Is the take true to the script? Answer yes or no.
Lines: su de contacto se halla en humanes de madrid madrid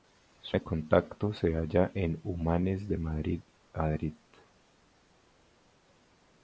yes